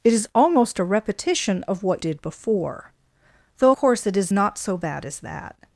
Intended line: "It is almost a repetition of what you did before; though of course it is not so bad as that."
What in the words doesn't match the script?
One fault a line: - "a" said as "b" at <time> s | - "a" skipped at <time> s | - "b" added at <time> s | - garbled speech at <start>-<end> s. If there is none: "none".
- "you" skipped at 2.0 s
- "of" skipped at 3.7 s